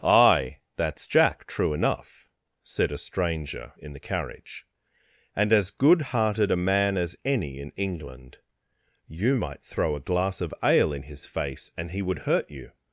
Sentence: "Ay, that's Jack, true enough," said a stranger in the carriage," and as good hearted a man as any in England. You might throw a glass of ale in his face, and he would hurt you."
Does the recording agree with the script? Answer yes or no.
yes